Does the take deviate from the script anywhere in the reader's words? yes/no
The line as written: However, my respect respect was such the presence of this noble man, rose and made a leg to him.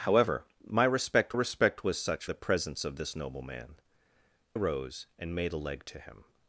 no